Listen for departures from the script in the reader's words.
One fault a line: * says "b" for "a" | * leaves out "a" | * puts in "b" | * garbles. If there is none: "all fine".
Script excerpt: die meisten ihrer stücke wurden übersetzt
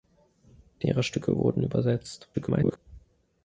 * leaves out "meisten"
* garbles